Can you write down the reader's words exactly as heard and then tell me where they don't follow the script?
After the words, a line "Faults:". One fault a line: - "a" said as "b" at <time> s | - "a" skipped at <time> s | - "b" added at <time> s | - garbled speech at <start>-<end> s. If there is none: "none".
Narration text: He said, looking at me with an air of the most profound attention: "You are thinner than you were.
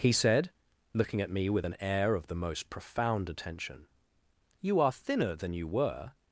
He said, looking at me with an air of the most profound attention: "You are thinner than you were.
Faults:
none